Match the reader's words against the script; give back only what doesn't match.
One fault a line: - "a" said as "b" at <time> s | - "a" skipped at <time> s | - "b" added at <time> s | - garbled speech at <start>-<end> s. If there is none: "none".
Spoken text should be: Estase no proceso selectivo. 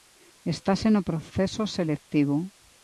none